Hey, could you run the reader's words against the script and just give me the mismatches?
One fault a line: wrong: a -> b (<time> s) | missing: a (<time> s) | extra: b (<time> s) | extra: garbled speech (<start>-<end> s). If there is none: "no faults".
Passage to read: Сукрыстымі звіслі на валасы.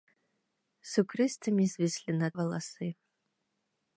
no faults